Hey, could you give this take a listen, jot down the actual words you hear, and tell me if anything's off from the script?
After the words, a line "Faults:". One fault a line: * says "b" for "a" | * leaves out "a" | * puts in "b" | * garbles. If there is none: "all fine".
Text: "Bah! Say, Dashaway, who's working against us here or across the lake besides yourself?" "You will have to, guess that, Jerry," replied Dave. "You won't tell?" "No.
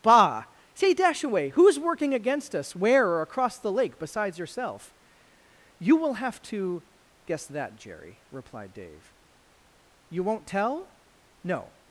"Bah! Say, Dashaway, who's working against us where or across the lake besides yourself?" "You will have to, guess that, Jerry," replied Dave. "You won't tell?" "No.
Faults:
* says "where" for "here"